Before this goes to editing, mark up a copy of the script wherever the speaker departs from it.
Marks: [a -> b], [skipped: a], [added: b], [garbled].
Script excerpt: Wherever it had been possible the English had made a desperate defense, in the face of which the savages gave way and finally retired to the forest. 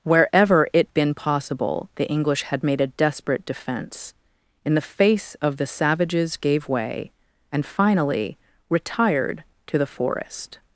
Wherever it [skipped: had] been possible the English had made a desperate defense, in the face of [skipped: which] the savages gave way and finally retired to the forest.